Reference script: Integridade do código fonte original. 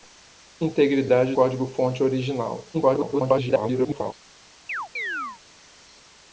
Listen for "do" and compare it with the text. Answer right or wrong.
wrong